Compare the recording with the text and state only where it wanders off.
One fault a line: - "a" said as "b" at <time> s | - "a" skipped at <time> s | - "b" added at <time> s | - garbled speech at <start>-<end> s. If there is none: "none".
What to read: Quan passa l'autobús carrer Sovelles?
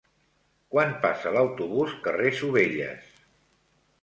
none